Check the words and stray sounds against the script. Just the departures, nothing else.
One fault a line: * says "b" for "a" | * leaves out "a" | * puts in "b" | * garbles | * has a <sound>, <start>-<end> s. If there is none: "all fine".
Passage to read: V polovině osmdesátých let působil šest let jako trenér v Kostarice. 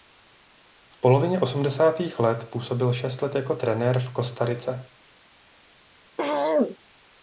* has a throat clearing, 6.2-6.8 s